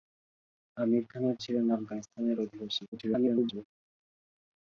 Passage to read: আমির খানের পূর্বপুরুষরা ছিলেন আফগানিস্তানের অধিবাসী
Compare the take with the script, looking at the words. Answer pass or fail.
fail